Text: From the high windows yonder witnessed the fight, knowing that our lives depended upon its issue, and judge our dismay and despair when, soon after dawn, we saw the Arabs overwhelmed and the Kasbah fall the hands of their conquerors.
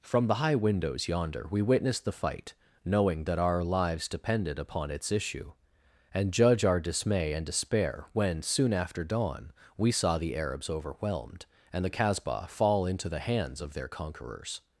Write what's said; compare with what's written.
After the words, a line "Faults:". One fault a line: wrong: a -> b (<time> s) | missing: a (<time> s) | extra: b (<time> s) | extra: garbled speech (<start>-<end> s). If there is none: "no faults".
From the high windows yonder we witnessed the fight, knowing that our lives depended upon its issue, and judge our dismay and despair when, soon after dawn, we saw the Arabs overwhelmed and the Kasbah fall into the hands of their conquerors.
Faults:
extra: we (1.5 s)
extra: into (12.8 s)